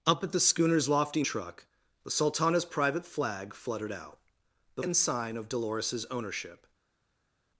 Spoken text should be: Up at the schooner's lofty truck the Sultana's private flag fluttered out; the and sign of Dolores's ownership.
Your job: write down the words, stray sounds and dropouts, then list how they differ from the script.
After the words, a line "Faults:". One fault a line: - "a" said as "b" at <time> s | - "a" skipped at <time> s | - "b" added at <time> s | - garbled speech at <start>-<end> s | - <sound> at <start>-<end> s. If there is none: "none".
Up at the schooner's lofty truck the Sultana's private flag fluttered out; the and sign of Dolores's ownership.
Faults:
none